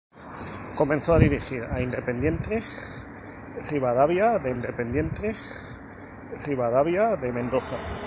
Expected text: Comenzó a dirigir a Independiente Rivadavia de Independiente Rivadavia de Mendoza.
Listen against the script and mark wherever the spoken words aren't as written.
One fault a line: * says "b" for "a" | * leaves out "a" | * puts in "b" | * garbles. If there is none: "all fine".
all fine